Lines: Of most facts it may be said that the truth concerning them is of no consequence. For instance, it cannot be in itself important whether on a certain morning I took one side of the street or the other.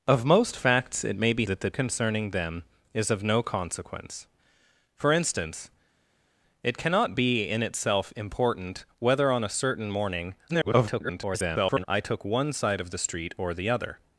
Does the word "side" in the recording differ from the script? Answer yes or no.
no